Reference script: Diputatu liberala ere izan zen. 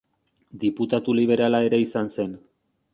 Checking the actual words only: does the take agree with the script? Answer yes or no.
yes